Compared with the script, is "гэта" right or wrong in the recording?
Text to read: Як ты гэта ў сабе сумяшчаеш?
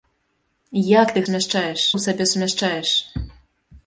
wrong